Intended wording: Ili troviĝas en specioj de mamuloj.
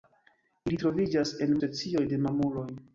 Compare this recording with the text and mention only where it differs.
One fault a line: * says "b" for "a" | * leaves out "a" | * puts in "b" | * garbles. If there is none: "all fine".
all fine